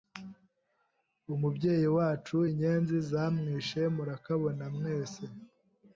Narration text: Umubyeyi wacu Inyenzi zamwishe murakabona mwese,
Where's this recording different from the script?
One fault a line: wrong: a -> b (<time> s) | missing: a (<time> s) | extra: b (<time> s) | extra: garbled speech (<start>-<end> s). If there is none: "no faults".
no faults